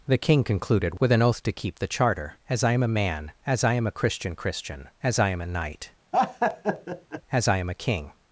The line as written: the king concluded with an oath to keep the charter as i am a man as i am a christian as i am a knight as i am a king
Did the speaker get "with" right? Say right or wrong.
right